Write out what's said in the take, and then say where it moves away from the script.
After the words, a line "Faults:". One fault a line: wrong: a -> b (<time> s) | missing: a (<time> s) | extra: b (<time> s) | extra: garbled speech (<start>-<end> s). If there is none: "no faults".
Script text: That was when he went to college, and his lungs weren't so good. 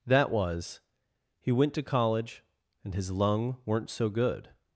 That was he went to college, and his lung weren't so good.
Faults:
missing: when (0.8 s)
wrong: lungs -> lung (3.1 s)